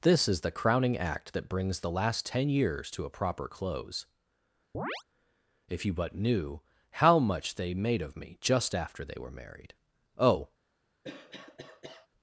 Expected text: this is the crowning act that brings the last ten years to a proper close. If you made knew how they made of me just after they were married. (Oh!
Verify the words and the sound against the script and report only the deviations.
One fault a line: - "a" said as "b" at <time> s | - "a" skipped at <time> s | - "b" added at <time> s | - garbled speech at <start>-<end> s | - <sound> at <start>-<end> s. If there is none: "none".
- chirp at 4.7-5.0 s
- "made" said as "but" at 5.9 s
- "much" added at 7.2 s
- cough at 11.0-12.1 s